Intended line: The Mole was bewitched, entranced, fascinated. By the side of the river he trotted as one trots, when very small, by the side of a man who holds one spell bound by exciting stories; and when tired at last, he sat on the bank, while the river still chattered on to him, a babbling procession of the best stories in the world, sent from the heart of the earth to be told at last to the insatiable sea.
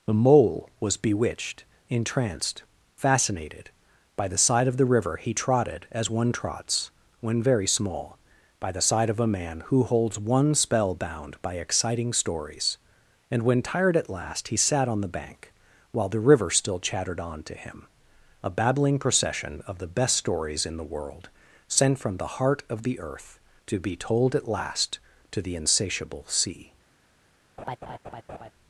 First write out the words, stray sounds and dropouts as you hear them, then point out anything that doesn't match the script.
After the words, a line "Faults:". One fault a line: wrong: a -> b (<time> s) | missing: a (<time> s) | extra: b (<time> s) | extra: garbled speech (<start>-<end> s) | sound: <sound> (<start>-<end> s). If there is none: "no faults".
The Mole was bewitched, entranced, fascinated. By the side of the river he trotted as one trots, when very small, by the side of a man who holds one spell bound by exciting stories; and when tired at last, he sat on the bank, while the river still chattered on to him, a babbling procession of the best stories in the world, sent from the heart of the earth to be told at last to the insatiable sea.
Faults:
sound: laugh (27.6-28.5 s)